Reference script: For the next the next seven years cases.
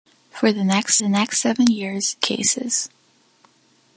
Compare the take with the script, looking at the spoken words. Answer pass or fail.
pass